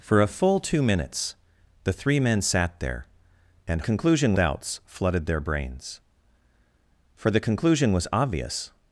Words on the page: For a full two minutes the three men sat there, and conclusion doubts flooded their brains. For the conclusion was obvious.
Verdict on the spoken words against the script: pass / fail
pass